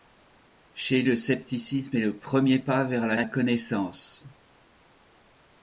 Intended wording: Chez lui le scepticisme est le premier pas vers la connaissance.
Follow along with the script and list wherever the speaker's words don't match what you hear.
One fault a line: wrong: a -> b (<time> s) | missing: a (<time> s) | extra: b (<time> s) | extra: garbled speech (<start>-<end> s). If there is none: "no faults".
missing: lui (1.0 s)
extra: la (3.1 s)